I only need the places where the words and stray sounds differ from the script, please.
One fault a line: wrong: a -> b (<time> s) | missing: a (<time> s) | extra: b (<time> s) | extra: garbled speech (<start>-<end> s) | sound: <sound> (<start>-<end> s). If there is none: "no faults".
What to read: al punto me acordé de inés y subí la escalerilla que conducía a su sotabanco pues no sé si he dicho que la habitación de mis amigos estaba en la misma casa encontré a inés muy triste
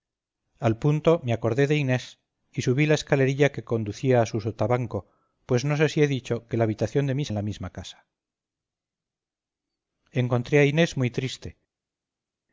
missing: amigos estaba (7.3 s)